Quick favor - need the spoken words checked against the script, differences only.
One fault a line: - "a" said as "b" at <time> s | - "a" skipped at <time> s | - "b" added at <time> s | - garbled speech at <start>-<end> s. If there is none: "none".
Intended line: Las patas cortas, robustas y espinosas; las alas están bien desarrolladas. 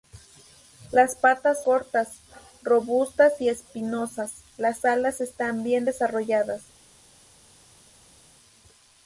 none